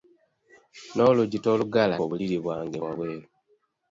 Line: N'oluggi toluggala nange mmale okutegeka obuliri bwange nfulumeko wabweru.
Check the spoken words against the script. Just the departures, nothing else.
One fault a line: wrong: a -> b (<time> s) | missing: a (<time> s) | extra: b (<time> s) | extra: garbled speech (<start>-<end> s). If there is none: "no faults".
missing: nange mmale okutegeka (2.0 s)
missing: nfulumeko (2.8 s)